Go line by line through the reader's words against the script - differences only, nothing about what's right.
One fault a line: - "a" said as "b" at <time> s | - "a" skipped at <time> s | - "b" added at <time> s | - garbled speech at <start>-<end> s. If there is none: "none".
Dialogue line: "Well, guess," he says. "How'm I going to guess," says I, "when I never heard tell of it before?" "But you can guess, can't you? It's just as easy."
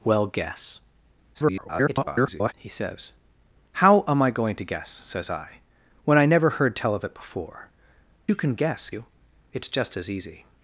- garbled speech at 1.3-2.5 s
- "But" skipped at 7.7 s
- "can't" skipped at 8.9 s